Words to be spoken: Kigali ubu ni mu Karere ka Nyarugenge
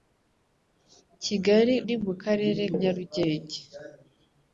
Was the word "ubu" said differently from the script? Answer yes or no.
yes